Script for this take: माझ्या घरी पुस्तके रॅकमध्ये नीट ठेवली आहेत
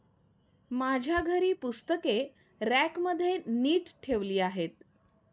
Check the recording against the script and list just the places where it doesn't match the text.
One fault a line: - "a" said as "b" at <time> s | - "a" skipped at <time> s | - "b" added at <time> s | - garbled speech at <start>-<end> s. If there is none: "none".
none